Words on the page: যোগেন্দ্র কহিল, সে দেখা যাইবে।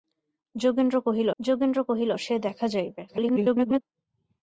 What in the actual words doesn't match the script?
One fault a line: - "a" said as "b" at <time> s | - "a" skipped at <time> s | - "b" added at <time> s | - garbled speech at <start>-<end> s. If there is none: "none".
- "যোগেন্দ্র কহিল" added at 1.4 s
- garbled speech at 3.1-3.8 s